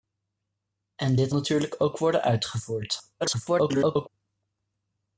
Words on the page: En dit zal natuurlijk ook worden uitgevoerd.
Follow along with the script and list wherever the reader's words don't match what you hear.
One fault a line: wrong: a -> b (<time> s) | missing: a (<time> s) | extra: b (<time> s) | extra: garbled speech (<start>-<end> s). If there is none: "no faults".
missing: zal (1.3 s)
extra: garbled speech (3.2-4.1 s)